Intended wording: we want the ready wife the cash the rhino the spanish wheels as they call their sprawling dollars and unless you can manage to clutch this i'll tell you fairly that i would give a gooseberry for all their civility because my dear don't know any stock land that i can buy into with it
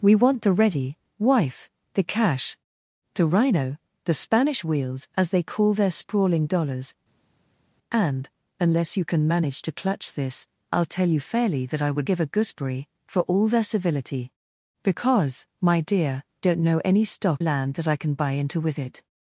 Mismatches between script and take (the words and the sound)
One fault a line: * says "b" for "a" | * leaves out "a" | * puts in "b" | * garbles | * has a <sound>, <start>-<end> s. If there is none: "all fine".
all fine